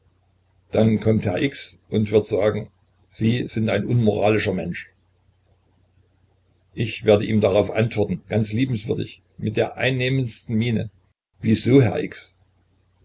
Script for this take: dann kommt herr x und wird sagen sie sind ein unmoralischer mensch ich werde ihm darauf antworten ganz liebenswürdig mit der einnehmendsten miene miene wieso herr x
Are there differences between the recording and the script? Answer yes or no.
yes